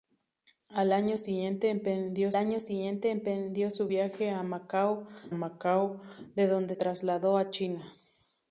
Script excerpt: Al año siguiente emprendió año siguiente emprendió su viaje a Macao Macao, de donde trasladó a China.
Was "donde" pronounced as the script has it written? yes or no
yes